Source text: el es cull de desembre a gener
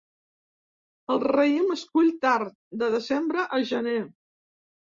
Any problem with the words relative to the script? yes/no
yes